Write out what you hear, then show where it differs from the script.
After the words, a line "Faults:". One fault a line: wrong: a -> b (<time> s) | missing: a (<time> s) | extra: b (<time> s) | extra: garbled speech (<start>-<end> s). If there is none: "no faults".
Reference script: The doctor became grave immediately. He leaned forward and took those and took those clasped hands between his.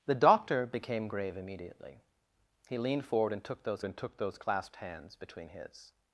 The doctor became grave immediately. He leaned forward and took those and took those clasped hands between his.
Faults:
no faults